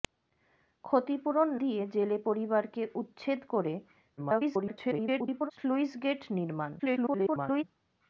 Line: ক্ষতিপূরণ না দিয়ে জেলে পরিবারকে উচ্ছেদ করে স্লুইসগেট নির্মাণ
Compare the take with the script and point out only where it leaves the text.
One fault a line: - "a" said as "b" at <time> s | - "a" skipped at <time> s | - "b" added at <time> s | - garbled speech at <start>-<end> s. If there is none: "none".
- "না" skipped at 1.5 s
- garbled speech at 4.2-5.5 s
- garbled speech at 6.8-7.6 s